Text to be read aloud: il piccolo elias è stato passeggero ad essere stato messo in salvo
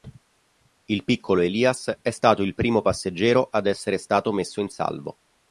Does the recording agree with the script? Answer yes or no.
no